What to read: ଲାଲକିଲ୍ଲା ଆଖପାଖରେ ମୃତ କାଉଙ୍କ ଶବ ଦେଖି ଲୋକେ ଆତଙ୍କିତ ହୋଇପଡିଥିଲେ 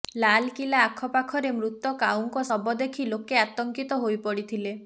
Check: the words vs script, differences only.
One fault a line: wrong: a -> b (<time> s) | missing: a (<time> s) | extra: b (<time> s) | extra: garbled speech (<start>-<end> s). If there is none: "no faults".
no faults